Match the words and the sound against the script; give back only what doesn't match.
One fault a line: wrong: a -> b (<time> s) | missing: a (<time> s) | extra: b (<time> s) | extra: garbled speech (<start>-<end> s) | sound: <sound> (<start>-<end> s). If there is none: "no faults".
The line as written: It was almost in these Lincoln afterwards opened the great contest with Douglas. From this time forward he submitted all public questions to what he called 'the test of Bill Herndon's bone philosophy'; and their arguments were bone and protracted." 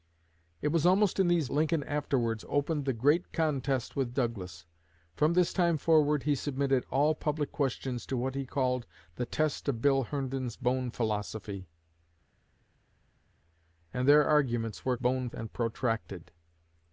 no faults